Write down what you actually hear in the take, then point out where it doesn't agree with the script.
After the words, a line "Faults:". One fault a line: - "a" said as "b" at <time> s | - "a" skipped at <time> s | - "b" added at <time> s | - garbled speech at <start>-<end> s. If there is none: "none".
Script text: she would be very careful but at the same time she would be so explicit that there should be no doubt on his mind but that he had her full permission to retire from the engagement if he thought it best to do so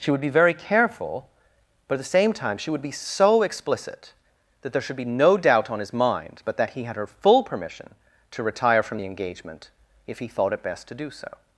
she would be very careful but at the same time she would be so explicit that there should be no doubt on his mind but that he had her full permission to retire from the engagement if he thought it best to do so
Faults:
none